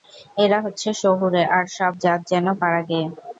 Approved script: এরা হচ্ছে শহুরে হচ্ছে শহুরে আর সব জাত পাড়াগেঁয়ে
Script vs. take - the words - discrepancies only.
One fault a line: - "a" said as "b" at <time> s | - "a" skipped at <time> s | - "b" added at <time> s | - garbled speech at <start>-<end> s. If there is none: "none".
- "হচ্ছে শহুরে" skipped at 1.4 s
- "যেন" added at 2.3 s